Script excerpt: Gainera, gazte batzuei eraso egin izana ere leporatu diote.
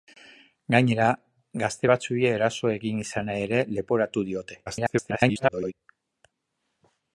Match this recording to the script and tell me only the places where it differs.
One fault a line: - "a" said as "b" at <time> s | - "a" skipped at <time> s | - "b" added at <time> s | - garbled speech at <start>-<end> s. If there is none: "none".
- garbled speech at 4.7-5.7 s